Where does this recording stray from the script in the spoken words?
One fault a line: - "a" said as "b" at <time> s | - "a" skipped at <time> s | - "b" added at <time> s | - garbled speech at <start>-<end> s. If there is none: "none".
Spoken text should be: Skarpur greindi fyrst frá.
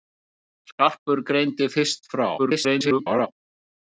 - garbled speech at 2.4-3.3 s